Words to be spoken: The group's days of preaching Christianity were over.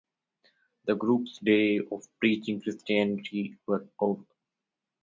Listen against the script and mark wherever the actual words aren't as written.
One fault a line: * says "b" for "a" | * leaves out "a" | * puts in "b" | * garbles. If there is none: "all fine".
all fine